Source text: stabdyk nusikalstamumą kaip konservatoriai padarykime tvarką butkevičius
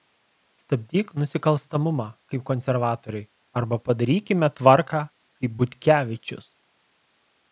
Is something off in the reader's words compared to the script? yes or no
yes